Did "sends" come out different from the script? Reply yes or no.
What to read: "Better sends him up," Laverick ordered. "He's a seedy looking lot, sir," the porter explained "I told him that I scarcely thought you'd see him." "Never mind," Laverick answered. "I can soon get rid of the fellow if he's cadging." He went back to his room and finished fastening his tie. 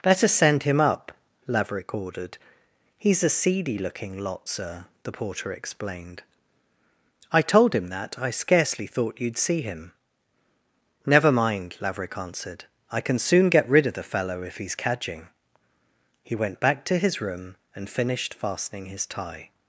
yes